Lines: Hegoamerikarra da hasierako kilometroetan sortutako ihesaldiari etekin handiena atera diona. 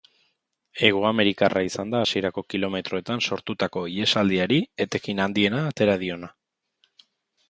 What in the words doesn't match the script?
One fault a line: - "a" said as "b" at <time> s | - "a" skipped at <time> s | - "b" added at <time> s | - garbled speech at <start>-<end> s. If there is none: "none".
- "izan" added at 1.6 s